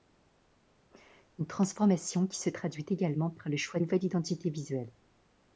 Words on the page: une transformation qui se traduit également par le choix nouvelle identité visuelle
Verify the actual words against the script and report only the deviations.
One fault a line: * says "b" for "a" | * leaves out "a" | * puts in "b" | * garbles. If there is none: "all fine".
all fine